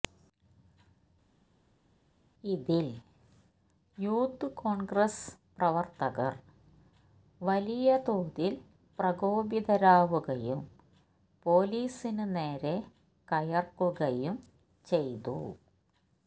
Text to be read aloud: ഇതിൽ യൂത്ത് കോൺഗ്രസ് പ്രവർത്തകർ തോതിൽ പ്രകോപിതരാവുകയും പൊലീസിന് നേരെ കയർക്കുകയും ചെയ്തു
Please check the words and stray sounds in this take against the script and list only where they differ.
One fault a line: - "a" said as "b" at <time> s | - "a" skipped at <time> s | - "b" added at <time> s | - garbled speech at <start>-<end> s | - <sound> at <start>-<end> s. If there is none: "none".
- "വലിയ" added at 7.4 s